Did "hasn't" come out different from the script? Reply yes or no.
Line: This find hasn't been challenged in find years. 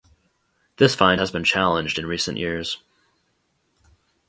yes